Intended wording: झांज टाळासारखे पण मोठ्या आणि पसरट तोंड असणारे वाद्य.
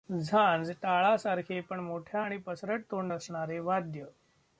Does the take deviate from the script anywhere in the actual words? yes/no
no